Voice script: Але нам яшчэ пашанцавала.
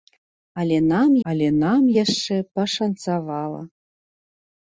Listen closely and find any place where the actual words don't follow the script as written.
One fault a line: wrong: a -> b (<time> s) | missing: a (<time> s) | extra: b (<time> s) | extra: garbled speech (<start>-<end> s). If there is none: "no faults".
extra: але нам (1.3 s)